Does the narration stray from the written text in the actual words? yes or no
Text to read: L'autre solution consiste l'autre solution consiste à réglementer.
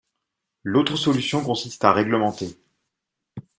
yes